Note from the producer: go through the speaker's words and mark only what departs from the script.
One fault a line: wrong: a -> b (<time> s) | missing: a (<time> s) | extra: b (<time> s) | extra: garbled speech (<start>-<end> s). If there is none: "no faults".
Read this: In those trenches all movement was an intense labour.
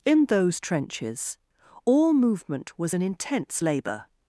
no faults